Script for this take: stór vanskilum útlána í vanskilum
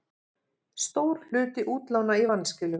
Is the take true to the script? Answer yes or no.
no